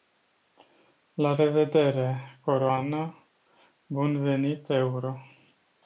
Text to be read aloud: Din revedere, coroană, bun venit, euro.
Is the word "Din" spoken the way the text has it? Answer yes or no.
no